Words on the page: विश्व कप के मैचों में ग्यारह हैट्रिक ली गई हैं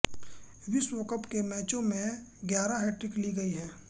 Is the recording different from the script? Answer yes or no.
no